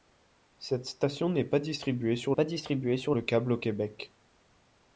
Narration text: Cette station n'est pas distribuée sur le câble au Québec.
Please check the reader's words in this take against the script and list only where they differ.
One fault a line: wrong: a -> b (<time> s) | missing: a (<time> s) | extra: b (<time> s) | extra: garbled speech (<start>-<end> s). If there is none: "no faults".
extra: pas distribuée sur (2.3 s)